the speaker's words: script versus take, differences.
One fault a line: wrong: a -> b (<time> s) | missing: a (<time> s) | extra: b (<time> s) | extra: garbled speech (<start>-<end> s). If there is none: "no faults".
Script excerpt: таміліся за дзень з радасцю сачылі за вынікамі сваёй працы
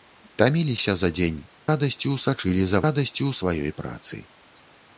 missing: з (1.4 s)
wrong: вынікамі -> радасцю (2.9 s)